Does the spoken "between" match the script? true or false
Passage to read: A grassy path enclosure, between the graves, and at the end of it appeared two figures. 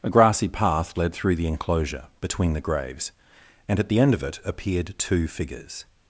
true